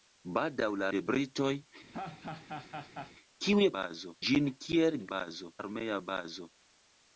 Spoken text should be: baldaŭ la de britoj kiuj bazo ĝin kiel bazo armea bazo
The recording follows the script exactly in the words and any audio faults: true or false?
false